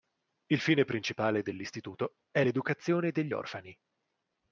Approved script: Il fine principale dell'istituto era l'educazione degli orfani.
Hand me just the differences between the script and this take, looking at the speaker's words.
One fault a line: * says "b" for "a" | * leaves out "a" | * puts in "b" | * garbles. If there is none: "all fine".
* says "è" for "era"